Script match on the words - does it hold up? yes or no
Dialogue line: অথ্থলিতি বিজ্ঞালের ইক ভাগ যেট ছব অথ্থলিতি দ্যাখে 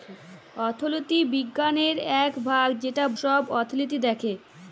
yes